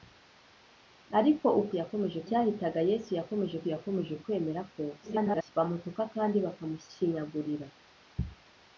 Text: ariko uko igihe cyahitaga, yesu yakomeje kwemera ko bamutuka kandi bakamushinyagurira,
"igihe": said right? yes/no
no